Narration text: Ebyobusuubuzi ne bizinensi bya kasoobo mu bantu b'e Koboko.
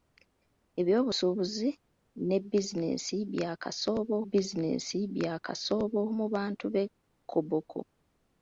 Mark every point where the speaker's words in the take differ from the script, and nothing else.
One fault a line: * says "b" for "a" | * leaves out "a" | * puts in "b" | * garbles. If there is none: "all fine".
* puts in "bizinensi bya kasoobo"